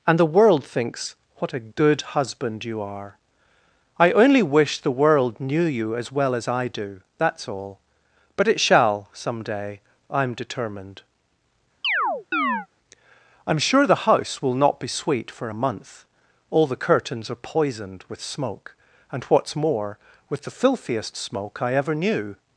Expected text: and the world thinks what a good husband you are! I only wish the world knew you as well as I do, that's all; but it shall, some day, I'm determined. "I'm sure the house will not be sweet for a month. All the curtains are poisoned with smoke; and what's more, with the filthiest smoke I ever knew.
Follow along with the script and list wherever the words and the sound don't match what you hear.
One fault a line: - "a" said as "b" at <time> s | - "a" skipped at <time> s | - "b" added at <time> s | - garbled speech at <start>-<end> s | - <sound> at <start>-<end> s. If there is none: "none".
- chirp at 11.8-12.7 s